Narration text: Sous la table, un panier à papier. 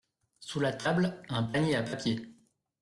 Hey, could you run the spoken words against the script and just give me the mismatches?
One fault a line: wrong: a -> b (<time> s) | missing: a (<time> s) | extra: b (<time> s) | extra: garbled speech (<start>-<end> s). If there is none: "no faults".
no faults